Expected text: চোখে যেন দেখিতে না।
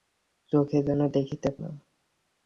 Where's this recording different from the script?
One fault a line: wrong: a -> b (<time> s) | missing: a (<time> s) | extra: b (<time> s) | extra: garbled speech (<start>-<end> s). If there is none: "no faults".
no faults